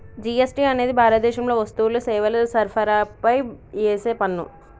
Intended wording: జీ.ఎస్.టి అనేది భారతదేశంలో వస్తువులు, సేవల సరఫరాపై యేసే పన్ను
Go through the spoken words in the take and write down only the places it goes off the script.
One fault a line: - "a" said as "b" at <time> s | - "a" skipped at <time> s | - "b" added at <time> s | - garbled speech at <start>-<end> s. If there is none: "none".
none